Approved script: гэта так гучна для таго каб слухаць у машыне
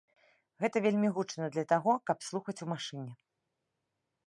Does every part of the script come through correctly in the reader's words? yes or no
no